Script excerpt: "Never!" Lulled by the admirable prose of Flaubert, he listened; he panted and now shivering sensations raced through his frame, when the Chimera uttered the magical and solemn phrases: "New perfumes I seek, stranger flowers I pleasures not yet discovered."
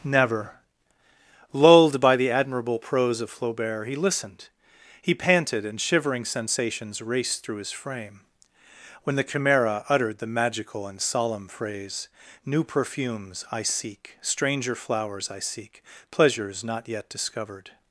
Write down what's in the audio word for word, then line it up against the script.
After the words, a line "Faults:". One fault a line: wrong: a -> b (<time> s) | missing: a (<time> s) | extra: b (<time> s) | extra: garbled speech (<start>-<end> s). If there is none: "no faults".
"Never!" Lulled by the admirable prose of Flaubert, he listened; he panted and shivering sensations raced through his frame, when the Chimera uttered the magical and solemn phrase: "New perfumes I seek, stranger flowers I seek, pleasures not yet discovered."
Faults:
missing: now (5.8 s)
wrong: phrases -> phrase (11.5 s)
extra: seek (15.4 s)